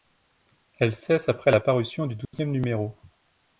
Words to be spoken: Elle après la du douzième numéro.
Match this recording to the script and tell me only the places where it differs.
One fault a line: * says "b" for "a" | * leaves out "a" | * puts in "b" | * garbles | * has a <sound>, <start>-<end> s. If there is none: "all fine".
* puts in "cesse"
* puts in "parution"
* has a dropout, 2.2-2.3 s